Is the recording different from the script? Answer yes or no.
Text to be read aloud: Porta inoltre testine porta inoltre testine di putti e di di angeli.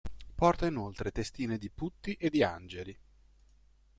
yes